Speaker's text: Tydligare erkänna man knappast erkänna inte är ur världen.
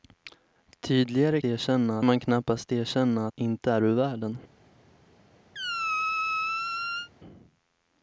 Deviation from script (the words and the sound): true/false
true